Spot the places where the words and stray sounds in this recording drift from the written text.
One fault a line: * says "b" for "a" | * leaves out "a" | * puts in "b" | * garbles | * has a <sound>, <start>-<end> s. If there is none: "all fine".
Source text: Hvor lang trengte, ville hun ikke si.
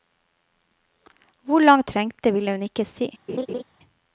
* has a laugh, 3.3-3.6 s